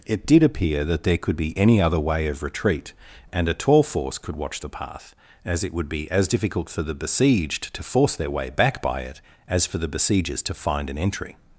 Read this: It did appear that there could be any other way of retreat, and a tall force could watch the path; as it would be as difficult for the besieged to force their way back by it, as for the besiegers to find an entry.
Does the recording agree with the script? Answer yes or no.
yes